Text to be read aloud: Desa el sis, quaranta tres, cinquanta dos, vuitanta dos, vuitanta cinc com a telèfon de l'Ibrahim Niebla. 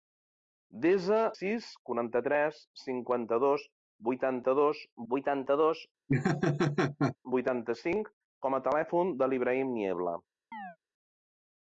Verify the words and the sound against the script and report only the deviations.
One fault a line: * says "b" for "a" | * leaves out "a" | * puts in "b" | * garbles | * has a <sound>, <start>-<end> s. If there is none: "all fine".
* leaves out "el"
* puts in "dos vuitanta"
* has a laugh, 6.1-7.2 s
* has a chirp, 10.5-10.8 s